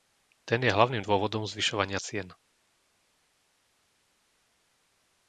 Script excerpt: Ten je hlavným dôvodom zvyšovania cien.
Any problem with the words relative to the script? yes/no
no